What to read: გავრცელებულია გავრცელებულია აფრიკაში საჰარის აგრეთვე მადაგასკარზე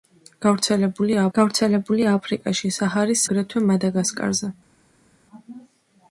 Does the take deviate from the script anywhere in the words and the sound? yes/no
no